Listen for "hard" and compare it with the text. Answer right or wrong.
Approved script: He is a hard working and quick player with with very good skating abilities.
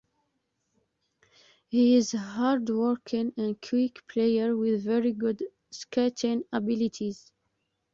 right